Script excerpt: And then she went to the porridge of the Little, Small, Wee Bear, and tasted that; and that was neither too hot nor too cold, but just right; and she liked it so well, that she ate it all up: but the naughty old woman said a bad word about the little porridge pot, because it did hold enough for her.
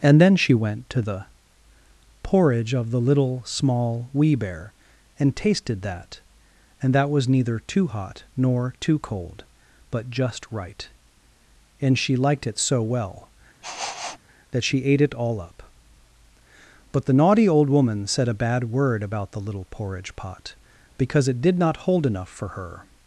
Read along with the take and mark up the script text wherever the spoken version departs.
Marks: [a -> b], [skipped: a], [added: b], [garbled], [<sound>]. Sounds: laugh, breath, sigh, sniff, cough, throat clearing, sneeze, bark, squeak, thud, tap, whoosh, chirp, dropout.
And then she went to the porridge of the Little, Small, Wee Bear, and tasted that; and that was neither too hot nor too cold, but just right; and she liked it so well, [sniff] that she ate it all up: but the naughty old woman said a bad word about the little porridge pot, because it did [added: not] hold enough for her.